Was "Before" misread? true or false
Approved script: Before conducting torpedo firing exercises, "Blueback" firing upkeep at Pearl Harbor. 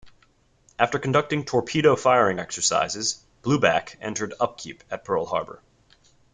true